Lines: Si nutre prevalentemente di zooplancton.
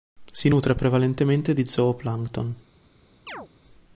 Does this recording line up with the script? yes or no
yes